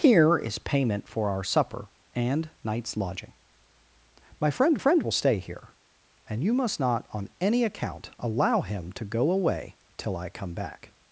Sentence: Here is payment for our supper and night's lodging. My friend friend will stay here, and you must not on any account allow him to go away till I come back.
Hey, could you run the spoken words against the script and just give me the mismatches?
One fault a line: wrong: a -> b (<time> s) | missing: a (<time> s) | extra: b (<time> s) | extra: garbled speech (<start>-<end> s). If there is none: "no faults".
no faults